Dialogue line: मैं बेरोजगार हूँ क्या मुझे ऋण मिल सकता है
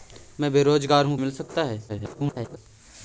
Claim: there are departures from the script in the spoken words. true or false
true